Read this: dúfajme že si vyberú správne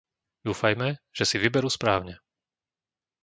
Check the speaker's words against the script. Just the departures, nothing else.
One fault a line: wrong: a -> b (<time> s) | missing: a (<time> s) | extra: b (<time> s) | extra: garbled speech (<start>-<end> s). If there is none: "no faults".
no faults